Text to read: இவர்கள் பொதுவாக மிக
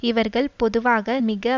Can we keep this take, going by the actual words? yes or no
yes